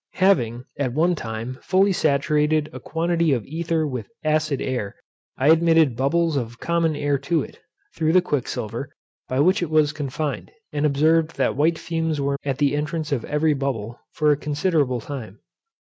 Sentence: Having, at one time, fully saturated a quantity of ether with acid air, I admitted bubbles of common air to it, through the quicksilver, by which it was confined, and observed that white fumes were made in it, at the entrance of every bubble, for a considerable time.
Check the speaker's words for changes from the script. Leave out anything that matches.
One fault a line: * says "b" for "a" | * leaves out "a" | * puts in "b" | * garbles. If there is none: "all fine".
* leaves out "made in it"